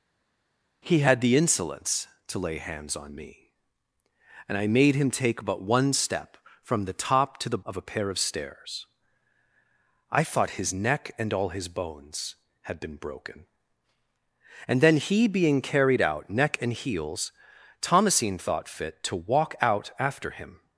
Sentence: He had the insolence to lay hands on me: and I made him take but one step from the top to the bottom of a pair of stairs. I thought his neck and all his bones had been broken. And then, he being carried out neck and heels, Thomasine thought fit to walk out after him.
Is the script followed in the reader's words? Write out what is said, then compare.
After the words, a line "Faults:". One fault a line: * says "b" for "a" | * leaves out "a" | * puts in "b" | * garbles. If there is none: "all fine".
He had the insolence to lay hands on me: and I made him take but one step from the top to the of a pair of stairs. I thought his neck and all his bones had been broken. And then, he being carried out neck and heels, Thomasine thought fit to walk out after him.
Faults:
* leaves out "bottom"